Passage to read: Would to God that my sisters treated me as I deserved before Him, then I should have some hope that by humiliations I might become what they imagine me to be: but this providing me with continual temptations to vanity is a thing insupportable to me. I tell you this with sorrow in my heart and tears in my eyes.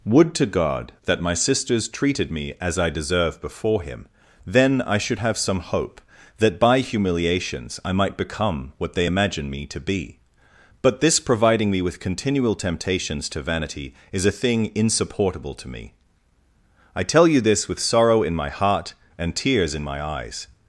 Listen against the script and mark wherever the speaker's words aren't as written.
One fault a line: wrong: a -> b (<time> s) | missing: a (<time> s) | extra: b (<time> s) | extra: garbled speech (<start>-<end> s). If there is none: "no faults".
wrong: deserved -> deserve (2.9 s)